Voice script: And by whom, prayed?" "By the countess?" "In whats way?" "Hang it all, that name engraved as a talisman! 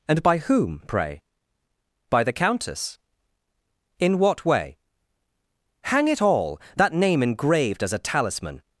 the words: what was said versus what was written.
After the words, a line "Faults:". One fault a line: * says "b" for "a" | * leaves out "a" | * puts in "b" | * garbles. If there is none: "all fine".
And by whom, pray?" "By the countess?" "In what way?" "Hang it all, that name engraved as a talisman!
Faults:
* says "pray" for "prayed"
* says "what" for "whats"